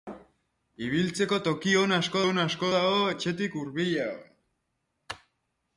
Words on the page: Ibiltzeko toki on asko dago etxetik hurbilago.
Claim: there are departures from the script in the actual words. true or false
true